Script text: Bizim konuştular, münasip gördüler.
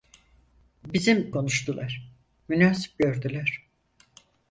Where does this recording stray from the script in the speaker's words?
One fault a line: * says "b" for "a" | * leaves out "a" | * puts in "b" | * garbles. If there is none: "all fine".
all fine